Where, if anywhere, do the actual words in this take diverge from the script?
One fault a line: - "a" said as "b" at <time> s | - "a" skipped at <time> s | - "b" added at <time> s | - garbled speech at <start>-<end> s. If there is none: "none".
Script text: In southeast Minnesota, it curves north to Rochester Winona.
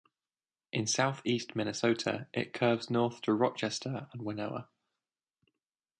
- "and" added at 4.1 s